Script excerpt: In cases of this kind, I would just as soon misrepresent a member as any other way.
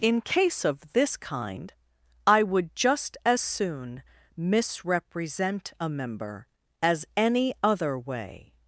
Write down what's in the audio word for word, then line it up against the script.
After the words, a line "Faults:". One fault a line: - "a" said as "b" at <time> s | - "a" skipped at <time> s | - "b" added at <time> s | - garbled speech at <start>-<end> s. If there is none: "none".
In case of this kind, I would just as soon misrepresent a member as any other way.
Faults:
- "cases" said as "case" at 0.2 s